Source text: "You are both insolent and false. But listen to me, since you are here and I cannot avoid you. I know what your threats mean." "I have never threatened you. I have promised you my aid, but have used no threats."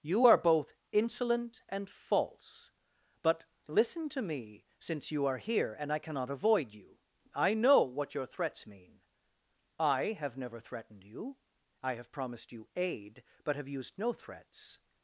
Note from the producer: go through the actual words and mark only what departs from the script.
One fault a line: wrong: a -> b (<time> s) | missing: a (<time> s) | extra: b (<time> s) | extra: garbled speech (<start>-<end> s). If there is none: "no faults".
missing: my (12.7 s)